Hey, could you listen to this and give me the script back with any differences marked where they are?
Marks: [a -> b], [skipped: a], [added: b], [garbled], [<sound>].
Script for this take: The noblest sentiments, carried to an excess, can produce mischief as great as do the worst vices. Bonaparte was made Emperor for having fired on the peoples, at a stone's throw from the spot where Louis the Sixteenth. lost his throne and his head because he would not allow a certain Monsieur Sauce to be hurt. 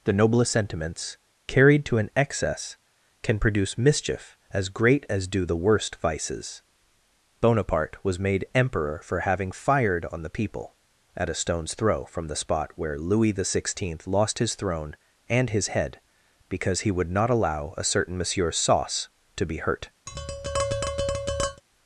The noblest sentiments, carried to an excess, can produce mischief as great as do the worst vices. Bonaparte was made Emperor for having fired on the [peoples, -> people] at a stone's throw from the spot where Louis the Sixteenth. lost his throne and his head because he would not allow a certain Monsieur Sauce to be hurt. [tap]